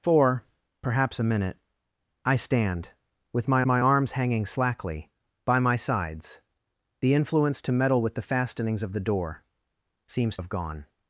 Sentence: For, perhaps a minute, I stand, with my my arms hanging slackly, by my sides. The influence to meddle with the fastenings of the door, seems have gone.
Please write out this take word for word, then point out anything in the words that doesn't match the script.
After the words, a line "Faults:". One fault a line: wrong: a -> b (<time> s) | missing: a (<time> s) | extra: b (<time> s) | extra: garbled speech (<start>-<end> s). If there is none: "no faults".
For, perhaps a minute, I stand, with my my arms hanging slackly, by my sides. The influence to meddle with the fastenings of the door, seems have gone.
Faults:
no faults